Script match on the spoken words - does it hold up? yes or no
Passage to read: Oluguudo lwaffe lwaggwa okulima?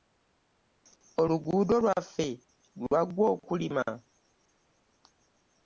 yes